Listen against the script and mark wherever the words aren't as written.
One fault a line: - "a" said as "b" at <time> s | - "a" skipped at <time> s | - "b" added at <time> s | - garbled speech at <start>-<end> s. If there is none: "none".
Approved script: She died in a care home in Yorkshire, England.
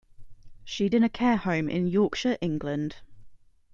- "died" skipped at 0.9 s